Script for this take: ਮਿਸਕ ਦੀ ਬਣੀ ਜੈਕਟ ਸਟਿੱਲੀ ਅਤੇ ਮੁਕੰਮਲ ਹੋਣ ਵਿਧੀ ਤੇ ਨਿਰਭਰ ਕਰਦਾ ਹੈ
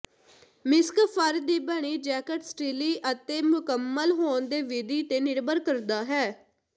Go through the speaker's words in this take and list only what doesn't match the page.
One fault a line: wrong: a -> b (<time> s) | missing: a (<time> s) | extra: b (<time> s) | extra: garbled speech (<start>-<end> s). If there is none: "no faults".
extra: ਫਰ (1.1 s)
extra: ਦੀ (4.5 s)